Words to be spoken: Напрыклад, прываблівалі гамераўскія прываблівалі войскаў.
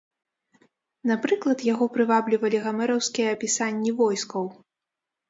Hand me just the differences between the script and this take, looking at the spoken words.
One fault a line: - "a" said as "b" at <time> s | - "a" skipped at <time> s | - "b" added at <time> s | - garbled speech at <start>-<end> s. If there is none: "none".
- "яго" added at 1.7 s
- "прываблівалі" said as "апісанні" at 3.4 s